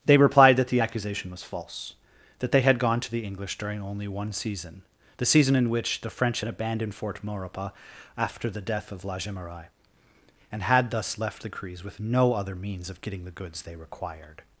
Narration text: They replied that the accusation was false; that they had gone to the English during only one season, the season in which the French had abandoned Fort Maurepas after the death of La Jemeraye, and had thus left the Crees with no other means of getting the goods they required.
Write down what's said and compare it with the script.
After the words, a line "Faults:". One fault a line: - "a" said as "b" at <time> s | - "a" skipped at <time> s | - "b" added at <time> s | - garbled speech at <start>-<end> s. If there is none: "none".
They replied that the accusation was false; that they had gone to the English during only one season, the season in which the French had abandoned Fort Maurepas after the death of La Jemeraye, and had thus left the Crees with no other means of getting the goods they required.
Faults:
none